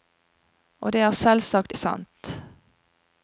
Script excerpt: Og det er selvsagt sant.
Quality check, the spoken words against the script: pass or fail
pass